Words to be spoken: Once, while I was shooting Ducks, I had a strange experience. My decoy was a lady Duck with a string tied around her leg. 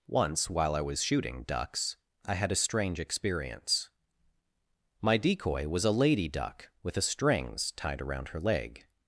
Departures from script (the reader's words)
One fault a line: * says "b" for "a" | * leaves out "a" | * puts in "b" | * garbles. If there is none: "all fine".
* says "strings" for "string"